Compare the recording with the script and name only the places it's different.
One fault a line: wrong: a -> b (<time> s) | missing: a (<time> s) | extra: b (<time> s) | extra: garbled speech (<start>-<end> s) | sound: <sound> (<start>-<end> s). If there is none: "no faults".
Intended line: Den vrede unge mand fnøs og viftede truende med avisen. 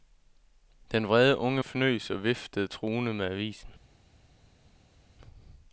missing: mand (1.6 s)